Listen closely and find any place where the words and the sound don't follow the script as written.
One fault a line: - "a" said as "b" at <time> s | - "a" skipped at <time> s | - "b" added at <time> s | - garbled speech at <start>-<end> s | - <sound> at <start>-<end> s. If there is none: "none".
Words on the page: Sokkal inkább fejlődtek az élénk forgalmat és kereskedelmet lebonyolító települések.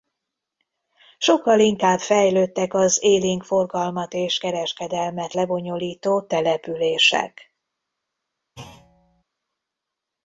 - thud at 8.6-9.2 s